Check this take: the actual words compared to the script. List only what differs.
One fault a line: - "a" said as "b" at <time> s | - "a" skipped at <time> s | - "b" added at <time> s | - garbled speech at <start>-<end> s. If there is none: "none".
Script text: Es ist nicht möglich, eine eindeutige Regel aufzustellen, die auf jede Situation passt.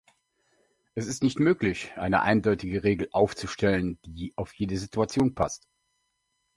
none